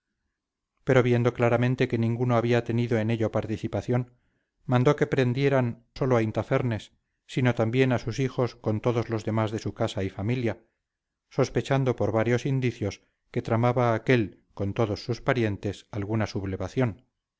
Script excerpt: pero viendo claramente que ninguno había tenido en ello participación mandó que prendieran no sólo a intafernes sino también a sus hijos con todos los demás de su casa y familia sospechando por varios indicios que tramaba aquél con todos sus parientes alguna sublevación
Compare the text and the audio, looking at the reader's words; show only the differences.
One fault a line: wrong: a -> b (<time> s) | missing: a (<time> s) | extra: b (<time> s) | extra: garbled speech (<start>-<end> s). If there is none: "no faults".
missing: no (5.8 s)